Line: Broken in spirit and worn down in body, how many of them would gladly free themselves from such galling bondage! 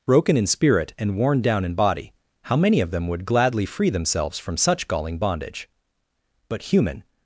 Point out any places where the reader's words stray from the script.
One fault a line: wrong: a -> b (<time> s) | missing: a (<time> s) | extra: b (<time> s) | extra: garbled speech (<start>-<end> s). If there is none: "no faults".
extra: But human (6.5 s)